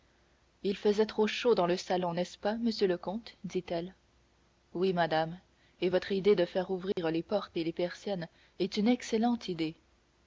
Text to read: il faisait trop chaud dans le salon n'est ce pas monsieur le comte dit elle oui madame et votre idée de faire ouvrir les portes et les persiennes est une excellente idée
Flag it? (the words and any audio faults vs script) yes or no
yes